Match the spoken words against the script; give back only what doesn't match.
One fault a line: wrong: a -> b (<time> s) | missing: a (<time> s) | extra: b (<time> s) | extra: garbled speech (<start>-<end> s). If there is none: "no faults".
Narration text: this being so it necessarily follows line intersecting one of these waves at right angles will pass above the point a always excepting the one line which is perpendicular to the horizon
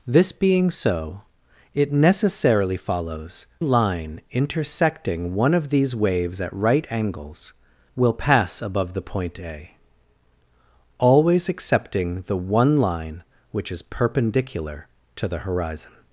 no faults